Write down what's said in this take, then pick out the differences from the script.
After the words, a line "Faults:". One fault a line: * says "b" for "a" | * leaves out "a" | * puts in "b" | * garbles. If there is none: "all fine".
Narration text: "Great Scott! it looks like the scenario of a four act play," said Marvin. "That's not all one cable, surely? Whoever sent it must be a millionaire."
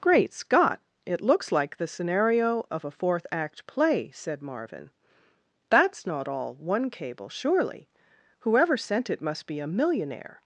"Great Scott! it looks like the scenario of a fourth act play," said Marvin. "That's not all one cable, surely? Whoever sent it must be a millionaire."
Faults:
* says "fourth" for "four"